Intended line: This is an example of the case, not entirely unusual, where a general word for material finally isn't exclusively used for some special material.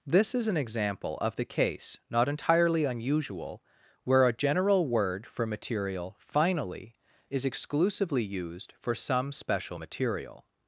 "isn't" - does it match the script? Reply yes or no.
no